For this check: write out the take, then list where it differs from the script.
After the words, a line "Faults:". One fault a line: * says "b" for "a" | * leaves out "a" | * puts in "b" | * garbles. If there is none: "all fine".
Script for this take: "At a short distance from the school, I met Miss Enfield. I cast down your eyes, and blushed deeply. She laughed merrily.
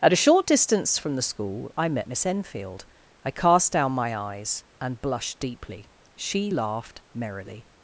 "At a short distance from the school, I met Miss Enfield. I cast down my eyes, and blushed deeply. She laughed merrily.
Faults:
* says "my" for "your"